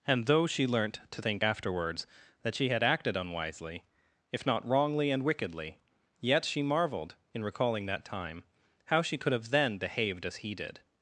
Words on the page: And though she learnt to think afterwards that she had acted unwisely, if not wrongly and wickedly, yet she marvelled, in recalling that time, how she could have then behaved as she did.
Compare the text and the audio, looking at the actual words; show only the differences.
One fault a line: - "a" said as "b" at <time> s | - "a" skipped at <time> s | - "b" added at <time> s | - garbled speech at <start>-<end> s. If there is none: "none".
- "she" said as "he" at 10.4 s